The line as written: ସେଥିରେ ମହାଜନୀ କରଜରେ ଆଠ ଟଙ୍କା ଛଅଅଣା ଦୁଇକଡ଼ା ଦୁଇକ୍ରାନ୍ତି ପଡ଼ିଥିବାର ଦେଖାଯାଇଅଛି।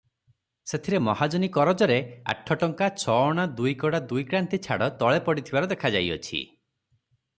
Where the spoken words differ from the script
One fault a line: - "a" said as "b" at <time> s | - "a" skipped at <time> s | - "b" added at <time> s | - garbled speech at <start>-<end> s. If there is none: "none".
- "ଛାଡ଼ ତଳେ" added at 4.7 s